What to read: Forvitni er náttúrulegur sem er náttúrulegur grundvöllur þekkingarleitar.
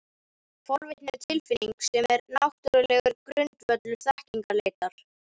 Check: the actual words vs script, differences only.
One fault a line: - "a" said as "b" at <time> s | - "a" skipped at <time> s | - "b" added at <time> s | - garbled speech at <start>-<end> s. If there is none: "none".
- "náttúrulegur" said as "tilfinning" at 1.2 s